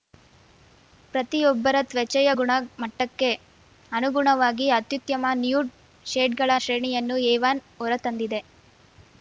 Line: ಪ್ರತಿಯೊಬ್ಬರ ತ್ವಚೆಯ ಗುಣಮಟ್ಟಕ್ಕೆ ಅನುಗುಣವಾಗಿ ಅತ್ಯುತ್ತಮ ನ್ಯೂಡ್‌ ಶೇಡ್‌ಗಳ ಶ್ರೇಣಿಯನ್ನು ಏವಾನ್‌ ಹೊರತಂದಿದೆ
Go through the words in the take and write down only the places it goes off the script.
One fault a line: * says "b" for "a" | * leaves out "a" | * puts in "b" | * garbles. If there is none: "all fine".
all fine